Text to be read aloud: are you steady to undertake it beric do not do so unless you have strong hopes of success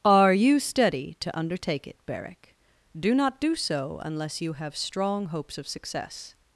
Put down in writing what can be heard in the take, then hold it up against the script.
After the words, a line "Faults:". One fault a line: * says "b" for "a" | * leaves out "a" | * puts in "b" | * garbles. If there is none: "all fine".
are you steady to undertake it beric do not do so unless you have strong hopes of success
Faults:
all fine